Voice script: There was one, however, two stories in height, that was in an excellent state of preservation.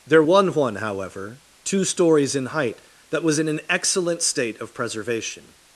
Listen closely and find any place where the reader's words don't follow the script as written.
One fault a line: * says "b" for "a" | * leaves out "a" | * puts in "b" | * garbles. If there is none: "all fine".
all fine